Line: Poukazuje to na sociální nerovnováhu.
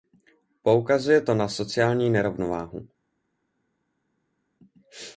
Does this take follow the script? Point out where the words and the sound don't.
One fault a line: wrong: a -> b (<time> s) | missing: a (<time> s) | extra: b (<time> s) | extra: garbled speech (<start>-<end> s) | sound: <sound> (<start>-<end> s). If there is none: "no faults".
no faults